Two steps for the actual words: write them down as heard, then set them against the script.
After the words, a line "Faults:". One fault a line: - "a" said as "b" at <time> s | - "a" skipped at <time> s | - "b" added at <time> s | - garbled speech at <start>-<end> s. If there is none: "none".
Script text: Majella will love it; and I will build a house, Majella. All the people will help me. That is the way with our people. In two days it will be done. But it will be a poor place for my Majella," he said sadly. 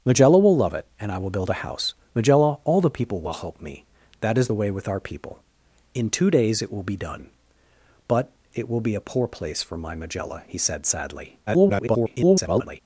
Majella will love it; and I will build a house, Majella. All the people will help me. That is the way with our people. In two days it will be done. But it will be a poor place for my Majella," he said sadly. [garbled]
Faults:
- garbled speech at 11.5-12.8 s